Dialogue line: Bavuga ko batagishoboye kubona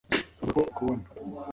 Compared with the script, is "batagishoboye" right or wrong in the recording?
wrong